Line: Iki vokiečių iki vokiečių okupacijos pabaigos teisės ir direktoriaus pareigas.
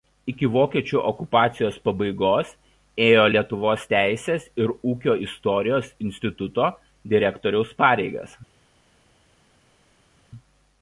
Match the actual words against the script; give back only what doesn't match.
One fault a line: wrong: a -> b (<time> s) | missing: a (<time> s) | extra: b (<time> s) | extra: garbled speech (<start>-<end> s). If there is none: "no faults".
wrong: iki vokiečių okupacijos pabaigos -> okupacijos pabaigos ėjo Lietuvos (1.1 s)
extra: ūkio istorijos instituto (4.9 s)